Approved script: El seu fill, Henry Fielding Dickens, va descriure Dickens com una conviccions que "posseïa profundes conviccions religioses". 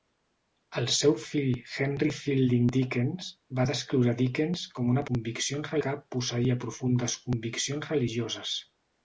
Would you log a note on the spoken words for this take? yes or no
no